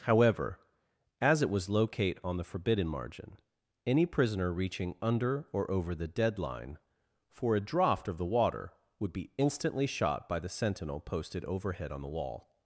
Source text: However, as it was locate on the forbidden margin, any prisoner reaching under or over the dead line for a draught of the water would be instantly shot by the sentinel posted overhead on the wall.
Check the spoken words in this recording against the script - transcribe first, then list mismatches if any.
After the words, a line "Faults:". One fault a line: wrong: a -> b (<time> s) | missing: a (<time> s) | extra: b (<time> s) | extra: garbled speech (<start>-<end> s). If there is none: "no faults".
However, as it was locate on the forbidden margin, any prisoner reaching under or over the dead line for a draught of the water would be instantly shot by the sentinel posted overhead on the wall.
Faults:
no faults